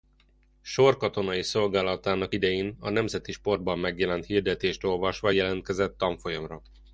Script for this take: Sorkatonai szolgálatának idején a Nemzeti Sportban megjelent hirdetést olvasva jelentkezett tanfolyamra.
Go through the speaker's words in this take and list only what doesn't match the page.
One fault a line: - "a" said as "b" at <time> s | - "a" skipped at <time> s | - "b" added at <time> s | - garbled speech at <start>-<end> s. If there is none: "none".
none